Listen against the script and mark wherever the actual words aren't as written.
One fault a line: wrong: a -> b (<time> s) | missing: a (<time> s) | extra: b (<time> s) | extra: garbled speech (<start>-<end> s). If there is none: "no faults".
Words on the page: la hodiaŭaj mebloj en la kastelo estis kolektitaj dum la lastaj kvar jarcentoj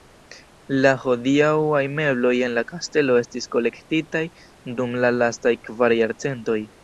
no faults